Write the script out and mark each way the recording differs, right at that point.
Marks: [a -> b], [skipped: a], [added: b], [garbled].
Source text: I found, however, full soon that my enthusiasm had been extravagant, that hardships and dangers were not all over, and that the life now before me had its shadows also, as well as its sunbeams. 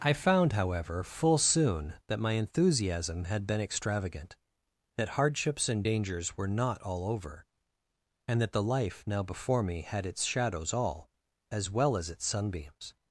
I found, however, full soon that my enthusiasm had been extravagant, that hardships and dangers were not all over, and that the life now before me had its shadows [also, -> all] as well as its sunbeams.